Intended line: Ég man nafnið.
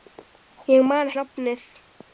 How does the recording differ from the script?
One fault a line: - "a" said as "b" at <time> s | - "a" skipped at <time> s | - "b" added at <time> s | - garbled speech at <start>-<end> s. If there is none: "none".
none